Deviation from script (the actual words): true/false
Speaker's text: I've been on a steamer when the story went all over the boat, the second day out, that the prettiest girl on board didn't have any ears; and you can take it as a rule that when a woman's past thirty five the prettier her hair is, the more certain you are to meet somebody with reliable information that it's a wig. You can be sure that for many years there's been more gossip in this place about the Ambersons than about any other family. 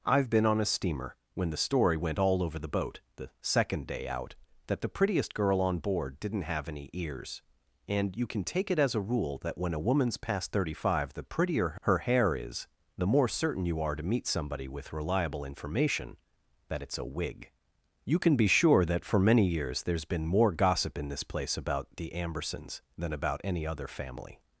false